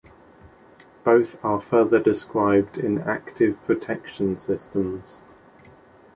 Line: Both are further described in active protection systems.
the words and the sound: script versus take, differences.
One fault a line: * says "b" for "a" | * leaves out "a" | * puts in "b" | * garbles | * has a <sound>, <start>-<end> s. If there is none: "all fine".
all fine